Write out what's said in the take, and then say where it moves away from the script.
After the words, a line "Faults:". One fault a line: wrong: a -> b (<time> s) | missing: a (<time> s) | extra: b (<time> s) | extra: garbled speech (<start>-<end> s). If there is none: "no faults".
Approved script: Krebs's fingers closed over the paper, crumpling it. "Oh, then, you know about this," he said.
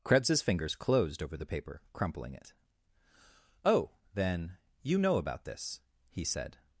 Krebs's fingers closed over the paper, crumpling it. "Oh, then, you know about this," he said.
Faults:
no faults